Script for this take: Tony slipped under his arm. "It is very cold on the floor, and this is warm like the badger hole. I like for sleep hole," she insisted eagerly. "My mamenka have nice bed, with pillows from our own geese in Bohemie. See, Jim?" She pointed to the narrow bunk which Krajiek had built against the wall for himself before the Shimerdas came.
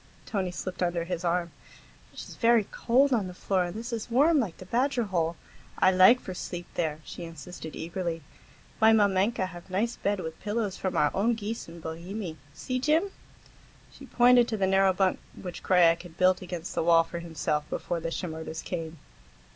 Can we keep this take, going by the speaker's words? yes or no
no